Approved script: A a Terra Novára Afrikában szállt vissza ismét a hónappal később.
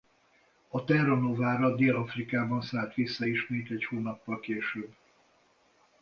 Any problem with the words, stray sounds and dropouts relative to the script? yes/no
yes